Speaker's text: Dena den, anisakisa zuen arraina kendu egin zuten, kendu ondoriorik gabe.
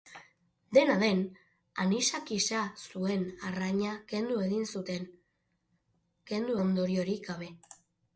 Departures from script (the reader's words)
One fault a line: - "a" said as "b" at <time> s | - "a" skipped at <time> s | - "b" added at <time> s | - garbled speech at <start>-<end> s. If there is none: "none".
none